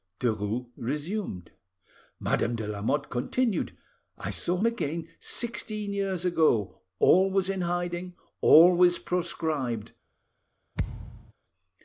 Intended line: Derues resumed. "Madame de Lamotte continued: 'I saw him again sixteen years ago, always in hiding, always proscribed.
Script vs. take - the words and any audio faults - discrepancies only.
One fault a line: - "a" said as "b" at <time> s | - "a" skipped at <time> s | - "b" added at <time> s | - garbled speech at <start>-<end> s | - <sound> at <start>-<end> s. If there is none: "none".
- "him" skipped at 4.6 s
- thud at 10.8-11.3 s